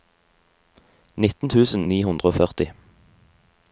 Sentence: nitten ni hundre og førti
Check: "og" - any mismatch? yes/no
no